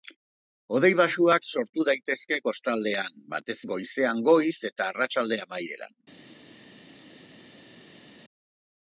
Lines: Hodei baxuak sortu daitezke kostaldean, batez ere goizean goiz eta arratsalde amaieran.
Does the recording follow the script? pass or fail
fail